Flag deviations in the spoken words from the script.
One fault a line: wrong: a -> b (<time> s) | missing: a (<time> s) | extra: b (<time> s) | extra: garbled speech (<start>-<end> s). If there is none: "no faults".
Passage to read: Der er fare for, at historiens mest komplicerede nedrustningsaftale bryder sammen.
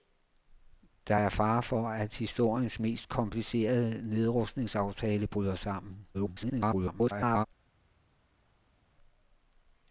extra: garbled speech (6.1-7.5 s)